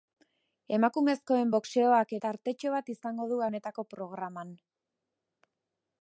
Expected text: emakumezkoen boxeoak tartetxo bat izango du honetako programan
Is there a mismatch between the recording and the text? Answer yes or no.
no